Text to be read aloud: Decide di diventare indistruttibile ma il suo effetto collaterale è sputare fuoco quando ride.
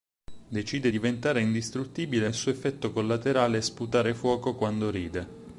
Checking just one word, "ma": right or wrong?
wrong